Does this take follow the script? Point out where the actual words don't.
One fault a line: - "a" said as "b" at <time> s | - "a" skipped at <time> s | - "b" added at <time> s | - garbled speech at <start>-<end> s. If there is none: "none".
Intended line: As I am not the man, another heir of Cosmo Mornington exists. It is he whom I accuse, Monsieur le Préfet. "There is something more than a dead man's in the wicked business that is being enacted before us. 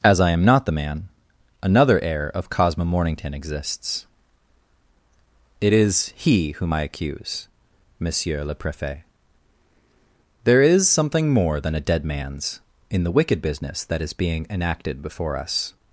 none